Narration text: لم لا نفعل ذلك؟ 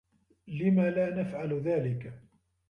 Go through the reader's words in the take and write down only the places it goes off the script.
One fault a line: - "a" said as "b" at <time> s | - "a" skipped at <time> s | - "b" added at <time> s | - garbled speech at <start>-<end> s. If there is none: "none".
none